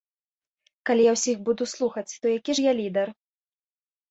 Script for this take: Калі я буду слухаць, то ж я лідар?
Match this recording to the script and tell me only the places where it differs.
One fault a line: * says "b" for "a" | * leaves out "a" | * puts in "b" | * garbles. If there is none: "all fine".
* puts in "ўсіх"
* puts in "які"